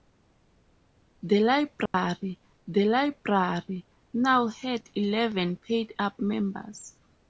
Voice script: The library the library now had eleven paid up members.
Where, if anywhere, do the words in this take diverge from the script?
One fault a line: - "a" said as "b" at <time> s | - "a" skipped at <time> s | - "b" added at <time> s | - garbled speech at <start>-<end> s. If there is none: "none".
none